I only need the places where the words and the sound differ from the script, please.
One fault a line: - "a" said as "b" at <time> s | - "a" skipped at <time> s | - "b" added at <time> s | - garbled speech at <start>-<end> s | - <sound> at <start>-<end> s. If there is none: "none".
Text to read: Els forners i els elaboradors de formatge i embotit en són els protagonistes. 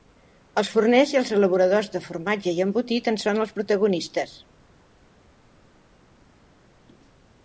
none